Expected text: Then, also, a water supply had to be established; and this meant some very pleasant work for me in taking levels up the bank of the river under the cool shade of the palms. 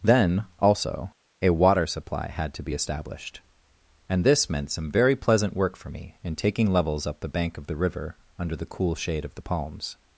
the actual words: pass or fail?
pass